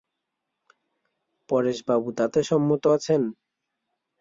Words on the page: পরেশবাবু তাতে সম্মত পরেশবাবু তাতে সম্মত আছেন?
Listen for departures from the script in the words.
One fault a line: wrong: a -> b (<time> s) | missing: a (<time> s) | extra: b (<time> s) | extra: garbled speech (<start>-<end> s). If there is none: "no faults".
missing: পরেশবাবু তাতে সম্মত (2.8 s)